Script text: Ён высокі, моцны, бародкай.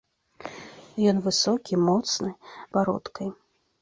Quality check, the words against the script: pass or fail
pass